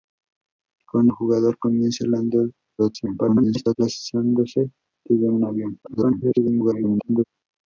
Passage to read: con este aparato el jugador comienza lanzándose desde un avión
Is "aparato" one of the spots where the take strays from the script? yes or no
yes